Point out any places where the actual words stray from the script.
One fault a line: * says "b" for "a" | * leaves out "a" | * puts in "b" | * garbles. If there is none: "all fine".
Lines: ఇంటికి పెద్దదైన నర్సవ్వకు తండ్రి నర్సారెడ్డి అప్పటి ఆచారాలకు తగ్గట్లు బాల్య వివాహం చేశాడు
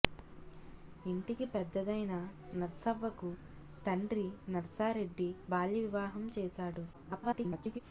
* leaves out "అప్పటి ఆచారాలకు తగ్గట్లు"
* garbles